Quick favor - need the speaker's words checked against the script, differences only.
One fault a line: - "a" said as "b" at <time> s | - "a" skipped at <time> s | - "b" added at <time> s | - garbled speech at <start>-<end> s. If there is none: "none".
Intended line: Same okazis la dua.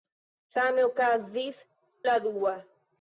none